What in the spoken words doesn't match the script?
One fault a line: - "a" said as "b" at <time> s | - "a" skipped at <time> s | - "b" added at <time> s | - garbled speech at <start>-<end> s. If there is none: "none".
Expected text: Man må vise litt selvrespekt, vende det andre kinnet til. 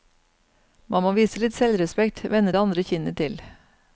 none